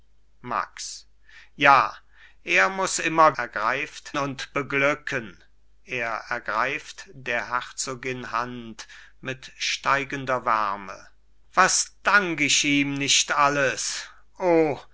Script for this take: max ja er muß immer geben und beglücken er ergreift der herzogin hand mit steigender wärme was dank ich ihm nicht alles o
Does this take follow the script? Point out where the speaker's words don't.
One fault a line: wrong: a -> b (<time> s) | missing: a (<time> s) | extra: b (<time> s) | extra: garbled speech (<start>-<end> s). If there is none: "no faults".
wrong: geben -> ergreift (3.4 s)